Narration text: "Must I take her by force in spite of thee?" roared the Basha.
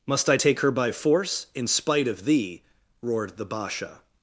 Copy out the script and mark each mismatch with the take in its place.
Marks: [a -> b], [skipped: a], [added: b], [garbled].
"Must I take her by force in spite of thee?" roared the Basha.